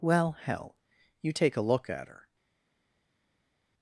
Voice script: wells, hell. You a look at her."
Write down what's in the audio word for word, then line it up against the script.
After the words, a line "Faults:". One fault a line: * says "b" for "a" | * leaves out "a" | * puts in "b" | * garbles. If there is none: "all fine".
well, hell. You take a look at her."
Faults:
* says "well" for "wells"
* puts in "take"